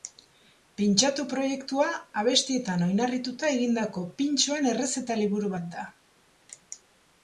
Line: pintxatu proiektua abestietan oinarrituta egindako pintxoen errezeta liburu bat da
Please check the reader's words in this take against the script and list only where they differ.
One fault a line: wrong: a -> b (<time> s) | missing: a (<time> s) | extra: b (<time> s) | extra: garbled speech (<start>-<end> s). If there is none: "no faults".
no faults